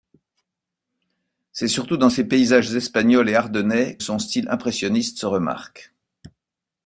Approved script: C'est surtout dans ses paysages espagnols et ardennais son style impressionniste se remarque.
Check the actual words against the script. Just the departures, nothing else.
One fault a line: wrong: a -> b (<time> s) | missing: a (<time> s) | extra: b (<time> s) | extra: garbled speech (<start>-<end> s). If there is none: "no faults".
no faults